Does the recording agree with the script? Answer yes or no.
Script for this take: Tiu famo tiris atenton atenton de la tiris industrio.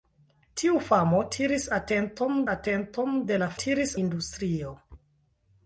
yes